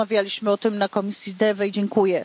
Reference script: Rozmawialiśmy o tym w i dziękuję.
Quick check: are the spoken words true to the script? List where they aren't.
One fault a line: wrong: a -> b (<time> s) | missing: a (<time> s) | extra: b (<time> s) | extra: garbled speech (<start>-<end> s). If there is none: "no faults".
extra: komisji DEVE (0.9 s)